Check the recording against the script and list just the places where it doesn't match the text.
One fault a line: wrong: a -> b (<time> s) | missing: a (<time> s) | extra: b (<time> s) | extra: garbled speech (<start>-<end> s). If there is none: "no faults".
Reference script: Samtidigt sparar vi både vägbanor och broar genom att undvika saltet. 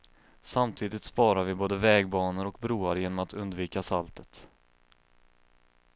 no faults